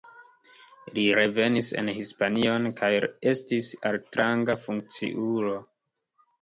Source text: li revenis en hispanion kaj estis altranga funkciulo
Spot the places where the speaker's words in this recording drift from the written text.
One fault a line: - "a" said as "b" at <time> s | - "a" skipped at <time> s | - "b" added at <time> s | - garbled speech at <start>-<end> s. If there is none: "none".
none